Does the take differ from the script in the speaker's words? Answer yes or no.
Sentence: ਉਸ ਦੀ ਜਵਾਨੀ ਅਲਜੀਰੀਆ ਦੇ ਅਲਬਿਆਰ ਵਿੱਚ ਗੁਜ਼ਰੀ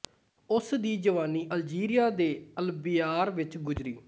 no